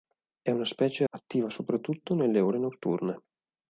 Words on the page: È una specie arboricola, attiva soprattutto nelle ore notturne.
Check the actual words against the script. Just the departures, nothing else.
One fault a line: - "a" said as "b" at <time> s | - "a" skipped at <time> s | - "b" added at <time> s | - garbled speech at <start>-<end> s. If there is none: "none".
- "arboricola" skipped at 1.1 s